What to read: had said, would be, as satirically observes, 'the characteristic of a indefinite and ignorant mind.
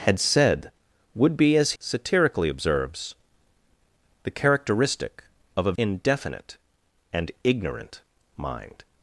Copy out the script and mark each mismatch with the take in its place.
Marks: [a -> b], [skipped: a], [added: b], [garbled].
had said, would be, as satirically observes, 'the characteristic of a indefinite and ignorant mind.